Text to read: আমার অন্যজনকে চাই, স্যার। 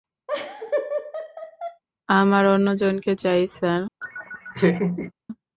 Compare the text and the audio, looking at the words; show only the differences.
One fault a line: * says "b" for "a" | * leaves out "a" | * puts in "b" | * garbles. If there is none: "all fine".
all fine